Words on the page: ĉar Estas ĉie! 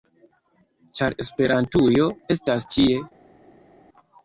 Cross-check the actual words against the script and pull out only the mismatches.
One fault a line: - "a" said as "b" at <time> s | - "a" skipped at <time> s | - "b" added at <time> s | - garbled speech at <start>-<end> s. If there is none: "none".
- "Esperantujo" added at 1.3 s